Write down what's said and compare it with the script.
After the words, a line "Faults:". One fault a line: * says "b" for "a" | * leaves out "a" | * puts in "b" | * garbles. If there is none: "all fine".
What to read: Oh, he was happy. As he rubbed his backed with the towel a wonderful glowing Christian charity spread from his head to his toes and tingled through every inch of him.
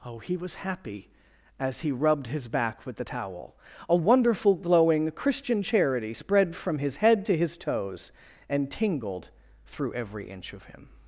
Oh, he was happy. As he rubbed his back with the towel a wonderful glowing Christian charity spread from his head to his toes and tingled through every inch of him.
Faults:
* says "back" for "backed"